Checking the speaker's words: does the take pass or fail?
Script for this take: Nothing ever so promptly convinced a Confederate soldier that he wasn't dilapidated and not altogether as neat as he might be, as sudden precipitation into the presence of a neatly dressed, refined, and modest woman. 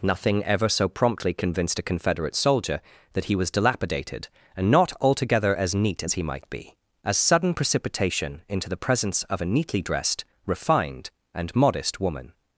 fail